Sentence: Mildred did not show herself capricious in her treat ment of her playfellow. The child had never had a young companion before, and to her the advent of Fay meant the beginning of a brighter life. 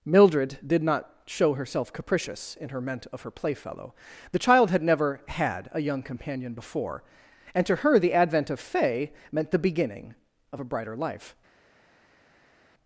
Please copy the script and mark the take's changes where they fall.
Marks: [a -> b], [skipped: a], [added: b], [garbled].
Mildred did not show herself capricious in her [skipped: treat] ment of her playfellow. The child had never had a young companion before, and to her the advent of Fay meant the beginning of a brighter life.